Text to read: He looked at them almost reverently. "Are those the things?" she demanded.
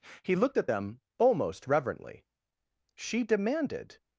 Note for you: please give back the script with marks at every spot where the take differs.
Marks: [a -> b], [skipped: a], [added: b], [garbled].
He looked at them almost reverently. [skipped: "Are those the things?"] she demanded.